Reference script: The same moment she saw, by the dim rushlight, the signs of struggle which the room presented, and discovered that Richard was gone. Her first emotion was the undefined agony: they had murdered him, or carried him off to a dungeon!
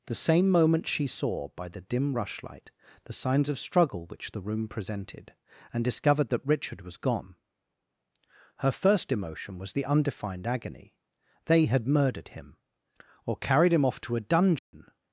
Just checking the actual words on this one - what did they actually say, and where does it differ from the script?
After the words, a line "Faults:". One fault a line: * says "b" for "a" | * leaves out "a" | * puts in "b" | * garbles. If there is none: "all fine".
The same moment she saw, by the dim rushlight, the signs of struggle which the room presented, and discovered that Richard was gone. Her first emotion was the undefined agony: they had murdered him, or carried him off to a dungeon!
Faults:
all fine